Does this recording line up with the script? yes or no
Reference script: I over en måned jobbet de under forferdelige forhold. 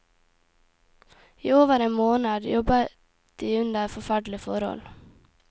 yes